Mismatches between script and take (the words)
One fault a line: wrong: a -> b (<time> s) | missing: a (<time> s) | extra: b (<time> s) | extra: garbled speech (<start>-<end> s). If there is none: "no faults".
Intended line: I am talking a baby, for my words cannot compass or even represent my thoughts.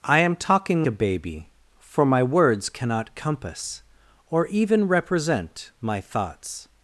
no faults